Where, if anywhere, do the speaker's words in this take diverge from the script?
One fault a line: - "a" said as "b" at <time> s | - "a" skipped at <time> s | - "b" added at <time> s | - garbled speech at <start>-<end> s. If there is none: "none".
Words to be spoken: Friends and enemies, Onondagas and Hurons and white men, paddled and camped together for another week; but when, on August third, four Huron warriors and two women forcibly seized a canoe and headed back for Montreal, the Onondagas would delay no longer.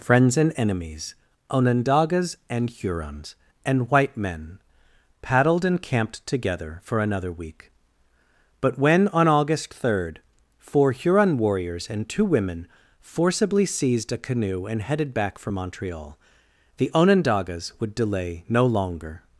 none